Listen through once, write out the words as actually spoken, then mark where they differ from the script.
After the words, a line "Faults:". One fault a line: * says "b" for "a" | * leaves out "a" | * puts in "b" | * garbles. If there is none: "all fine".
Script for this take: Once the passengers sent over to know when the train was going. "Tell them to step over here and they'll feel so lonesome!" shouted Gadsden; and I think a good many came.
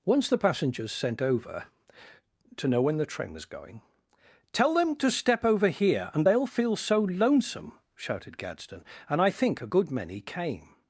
Once the passengers sent over to know when the train was going. "Tell them to step over here and they'll feel so lonesome!" shouted Gadsden; and I think a good many came.
Faults:
all fine